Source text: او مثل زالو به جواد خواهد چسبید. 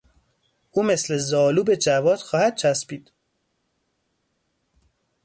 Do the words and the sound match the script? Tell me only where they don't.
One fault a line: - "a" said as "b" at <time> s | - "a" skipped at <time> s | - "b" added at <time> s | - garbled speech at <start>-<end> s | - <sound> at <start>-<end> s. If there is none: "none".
none